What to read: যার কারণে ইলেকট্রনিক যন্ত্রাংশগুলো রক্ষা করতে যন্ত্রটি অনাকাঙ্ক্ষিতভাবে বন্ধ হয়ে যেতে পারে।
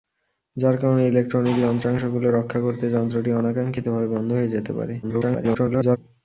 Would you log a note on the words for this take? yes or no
yes